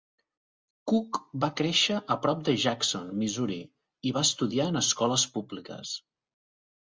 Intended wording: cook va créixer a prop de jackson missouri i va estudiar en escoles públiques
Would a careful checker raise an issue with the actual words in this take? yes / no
no